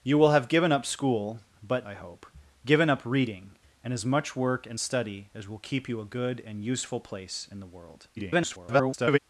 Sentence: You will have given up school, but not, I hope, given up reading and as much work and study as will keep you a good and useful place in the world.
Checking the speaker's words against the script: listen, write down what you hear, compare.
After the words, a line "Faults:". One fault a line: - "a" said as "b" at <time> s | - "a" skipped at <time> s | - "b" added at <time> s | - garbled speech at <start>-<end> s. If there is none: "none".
You will have given up school, but I hope, given up reading and as much work and study as will keep you a good and useful place in the world. [garbled]
Faults:
- "not" skipped at 1.9 s
- garbled speech at 8.2-9.2 s